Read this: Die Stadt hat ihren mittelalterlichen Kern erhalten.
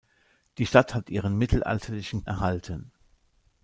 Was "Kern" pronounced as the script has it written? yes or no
no